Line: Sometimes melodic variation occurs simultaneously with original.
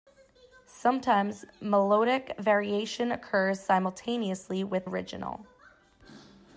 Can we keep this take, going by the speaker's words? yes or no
yes